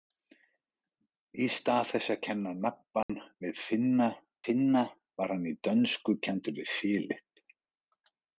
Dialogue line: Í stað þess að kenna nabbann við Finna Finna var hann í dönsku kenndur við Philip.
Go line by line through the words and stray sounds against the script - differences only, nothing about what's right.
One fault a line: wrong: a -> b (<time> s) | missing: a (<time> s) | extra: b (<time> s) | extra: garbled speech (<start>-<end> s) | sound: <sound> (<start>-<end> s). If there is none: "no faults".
sound: dropout (3.0-3.1 s)